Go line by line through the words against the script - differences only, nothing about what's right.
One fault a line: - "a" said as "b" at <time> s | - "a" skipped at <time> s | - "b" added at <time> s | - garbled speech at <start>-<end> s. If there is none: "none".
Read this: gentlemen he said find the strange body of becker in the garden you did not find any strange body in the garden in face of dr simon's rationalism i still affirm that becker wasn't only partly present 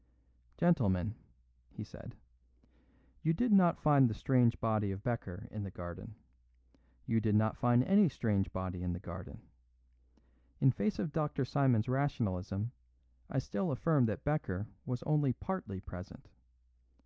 - "you did not" added at 3.2 s
- "wasn't" said as "was" at 14.8 s